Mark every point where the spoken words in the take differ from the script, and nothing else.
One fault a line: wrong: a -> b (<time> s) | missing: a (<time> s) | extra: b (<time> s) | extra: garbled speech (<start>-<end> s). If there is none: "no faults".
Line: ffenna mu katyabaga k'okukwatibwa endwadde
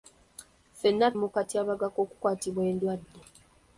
no faults